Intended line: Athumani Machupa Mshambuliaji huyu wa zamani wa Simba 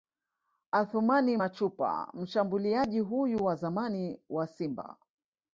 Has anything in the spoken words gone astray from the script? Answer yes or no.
no